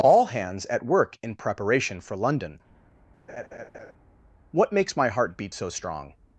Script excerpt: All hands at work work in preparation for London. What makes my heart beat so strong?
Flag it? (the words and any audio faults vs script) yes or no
yes